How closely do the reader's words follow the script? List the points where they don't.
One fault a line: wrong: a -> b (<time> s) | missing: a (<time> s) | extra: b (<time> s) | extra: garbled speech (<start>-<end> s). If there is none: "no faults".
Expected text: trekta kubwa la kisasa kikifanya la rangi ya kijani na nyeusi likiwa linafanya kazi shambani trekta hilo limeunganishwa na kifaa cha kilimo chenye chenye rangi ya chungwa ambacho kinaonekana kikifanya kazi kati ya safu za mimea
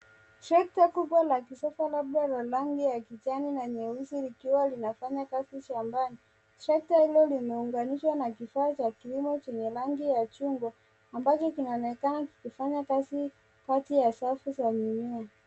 wrong: kikifanya -> labda (1.9 s)
missing: chenye (9.7 s)